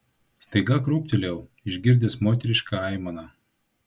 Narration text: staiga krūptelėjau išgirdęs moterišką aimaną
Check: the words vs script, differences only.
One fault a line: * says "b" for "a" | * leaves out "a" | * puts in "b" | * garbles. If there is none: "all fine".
all fine